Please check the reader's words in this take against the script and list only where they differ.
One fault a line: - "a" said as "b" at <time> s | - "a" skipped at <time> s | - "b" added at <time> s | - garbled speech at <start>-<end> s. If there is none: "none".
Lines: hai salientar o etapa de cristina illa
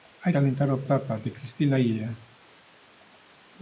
none